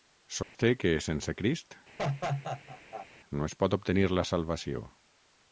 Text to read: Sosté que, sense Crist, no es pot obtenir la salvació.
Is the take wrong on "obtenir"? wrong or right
right